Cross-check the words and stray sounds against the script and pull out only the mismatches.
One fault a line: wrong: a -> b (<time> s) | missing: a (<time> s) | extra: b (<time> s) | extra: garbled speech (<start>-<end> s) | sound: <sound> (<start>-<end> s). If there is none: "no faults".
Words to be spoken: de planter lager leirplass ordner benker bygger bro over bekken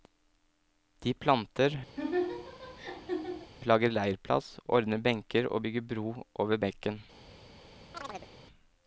sound: laugh (2.0-3.5 s)
extra: og (5.5 s)
sound: chirp (7.9-8.3 s)